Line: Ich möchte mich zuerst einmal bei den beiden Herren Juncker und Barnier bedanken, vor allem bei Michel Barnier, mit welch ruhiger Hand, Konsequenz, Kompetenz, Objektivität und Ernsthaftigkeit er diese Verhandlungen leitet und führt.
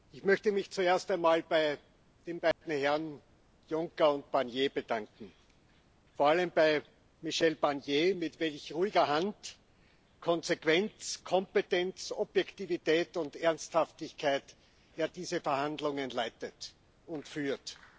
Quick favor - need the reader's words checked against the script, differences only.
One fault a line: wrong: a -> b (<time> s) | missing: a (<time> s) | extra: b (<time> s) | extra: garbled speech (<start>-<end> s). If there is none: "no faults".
no faults